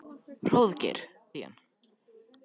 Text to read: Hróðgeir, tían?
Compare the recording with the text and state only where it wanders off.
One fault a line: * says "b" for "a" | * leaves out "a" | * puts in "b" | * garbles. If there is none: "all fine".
all fine